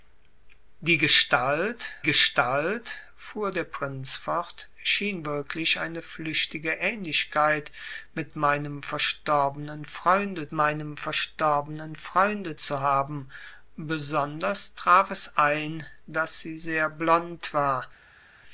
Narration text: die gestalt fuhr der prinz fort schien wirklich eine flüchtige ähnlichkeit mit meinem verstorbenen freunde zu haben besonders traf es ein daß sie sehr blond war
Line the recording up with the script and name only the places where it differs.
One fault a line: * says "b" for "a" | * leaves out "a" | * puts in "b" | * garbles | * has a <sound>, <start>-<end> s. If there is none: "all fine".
* puts in "gestalt"
* puts in "meinem verstorbenen freunde"